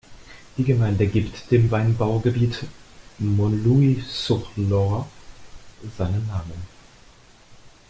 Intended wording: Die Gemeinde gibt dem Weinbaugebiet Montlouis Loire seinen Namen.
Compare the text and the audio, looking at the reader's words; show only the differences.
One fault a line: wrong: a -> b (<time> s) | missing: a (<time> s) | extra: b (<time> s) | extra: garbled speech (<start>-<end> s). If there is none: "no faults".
extra: sur (4.1 s)